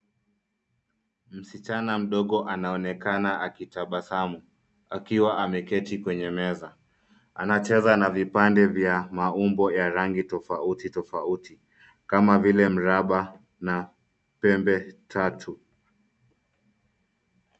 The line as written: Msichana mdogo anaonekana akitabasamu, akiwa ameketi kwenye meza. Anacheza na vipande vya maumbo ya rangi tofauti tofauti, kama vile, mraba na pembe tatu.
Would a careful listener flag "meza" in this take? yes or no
no